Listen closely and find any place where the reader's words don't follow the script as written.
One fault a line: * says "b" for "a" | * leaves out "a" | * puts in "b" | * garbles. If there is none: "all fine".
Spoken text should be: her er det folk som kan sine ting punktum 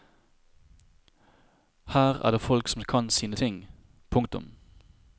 all fine